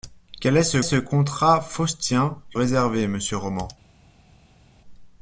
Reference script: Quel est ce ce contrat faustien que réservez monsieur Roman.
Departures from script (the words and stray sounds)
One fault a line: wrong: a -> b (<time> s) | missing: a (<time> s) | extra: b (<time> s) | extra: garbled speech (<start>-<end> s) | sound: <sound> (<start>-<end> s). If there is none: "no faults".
no faults